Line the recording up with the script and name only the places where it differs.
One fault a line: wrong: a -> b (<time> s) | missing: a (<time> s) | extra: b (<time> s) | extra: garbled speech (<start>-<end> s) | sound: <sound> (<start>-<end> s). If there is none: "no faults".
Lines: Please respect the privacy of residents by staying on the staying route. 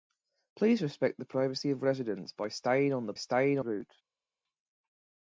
no faults